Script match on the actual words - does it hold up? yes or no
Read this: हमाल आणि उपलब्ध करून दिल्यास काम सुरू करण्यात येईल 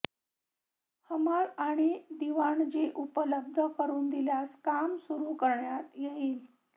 no